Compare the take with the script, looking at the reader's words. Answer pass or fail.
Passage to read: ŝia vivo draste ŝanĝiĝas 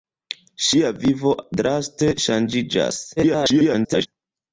fail